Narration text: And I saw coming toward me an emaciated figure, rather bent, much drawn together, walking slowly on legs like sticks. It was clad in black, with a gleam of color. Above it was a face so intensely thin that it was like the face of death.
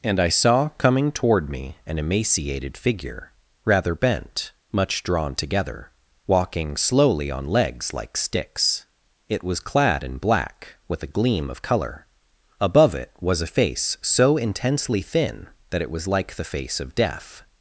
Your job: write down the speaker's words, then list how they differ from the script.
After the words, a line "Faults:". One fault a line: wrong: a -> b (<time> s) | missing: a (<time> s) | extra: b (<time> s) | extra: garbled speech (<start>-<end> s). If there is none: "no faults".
And I saw coming toward me an emaciated figure, rather bent, much drawn together, walking slowly on legs like sticks. It was clad in black, with a gleam of color. Above it was a face so intensely thin that it was like the face of death.
Faults:
no faults